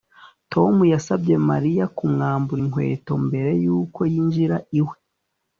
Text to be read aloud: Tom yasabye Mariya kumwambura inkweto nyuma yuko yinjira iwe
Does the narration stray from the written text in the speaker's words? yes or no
yes